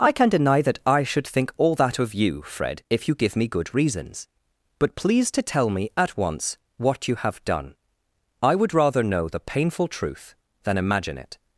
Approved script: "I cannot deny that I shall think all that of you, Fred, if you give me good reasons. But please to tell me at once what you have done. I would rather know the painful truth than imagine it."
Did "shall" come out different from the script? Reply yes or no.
yes